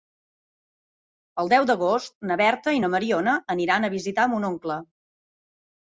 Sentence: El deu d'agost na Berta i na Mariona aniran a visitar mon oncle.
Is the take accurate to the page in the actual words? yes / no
yes